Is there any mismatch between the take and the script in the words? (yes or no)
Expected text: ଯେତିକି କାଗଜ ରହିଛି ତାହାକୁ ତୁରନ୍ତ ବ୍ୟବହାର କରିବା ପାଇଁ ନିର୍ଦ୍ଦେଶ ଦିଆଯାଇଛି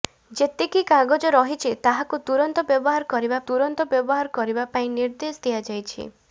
yes